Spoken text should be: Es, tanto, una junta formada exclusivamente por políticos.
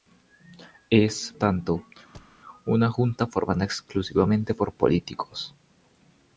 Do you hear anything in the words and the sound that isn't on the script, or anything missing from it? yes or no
yes